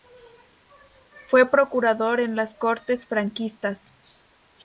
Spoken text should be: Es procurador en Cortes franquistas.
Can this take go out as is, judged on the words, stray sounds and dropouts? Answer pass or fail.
fail